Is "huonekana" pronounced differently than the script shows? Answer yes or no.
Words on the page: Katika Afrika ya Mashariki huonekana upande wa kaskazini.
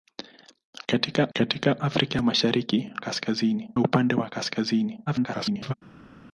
yes